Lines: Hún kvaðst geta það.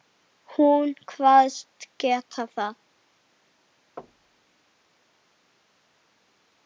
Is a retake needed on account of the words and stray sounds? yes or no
yes